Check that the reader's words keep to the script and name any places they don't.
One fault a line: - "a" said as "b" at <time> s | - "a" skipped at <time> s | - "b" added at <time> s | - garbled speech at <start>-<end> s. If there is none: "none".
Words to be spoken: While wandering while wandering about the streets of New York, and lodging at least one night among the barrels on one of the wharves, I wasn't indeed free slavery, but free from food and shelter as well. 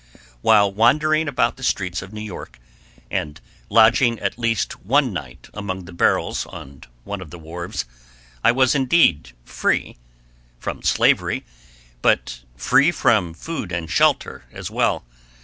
- "while wandering" skipped at 1.3 s
- "wasn't" said as "was" at 8.5 s
- "from" added at 10.6 s